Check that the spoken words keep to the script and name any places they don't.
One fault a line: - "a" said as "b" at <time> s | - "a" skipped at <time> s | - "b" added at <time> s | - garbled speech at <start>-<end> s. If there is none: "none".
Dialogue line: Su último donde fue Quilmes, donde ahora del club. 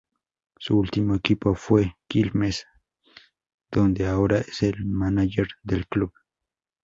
- "donde" said as "equipo" at 1.1 s
- "es el mánager" added at 4.4 s